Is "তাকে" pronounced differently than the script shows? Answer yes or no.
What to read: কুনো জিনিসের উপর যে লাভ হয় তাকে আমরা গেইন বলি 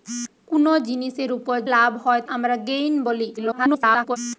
yes